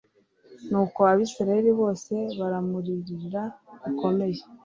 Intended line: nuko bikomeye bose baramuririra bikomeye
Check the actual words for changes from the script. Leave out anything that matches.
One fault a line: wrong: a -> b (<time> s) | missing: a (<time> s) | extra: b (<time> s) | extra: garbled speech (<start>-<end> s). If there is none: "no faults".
wrong: bikomeye -> abayisraheli (1.0 s)